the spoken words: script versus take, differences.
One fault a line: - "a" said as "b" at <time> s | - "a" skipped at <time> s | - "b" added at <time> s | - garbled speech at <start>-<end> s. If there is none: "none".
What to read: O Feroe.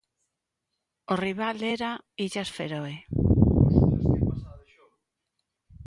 - "rival era Illas" added at 1.2 s